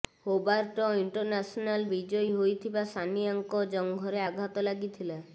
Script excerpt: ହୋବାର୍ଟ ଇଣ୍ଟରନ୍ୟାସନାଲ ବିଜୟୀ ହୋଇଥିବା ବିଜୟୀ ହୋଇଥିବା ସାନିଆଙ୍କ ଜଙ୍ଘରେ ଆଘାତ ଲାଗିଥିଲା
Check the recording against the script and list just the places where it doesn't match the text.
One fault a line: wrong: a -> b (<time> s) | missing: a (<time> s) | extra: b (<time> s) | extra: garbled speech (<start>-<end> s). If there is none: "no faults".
missing: ବିଜୟୀ ହୋଇଥିବା (2.8 s)